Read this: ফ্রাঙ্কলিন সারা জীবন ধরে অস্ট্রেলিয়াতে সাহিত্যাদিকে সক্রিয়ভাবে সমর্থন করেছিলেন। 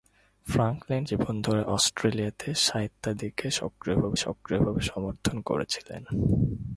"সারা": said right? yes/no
no